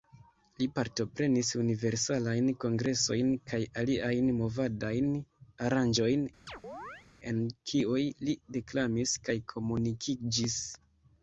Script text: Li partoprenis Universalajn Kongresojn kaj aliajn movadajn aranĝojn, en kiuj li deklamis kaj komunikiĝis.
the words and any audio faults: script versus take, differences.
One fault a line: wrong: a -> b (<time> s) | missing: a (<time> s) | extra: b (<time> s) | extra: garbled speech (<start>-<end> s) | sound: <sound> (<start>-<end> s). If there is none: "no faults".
sound: chirp (6.5-7.1 s)